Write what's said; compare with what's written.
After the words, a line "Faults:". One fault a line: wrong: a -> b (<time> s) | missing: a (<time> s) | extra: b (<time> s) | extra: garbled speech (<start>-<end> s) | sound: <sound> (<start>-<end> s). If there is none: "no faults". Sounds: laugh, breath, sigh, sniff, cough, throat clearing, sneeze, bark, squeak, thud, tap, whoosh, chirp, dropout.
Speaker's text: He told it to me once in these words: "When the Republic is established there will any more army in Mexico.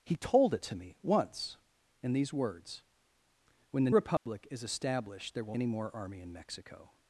He told it to me once in these words: "When the Republic is established there will any more army in Mexico.
Faults:
sound: dropout (4.2-4.3 s)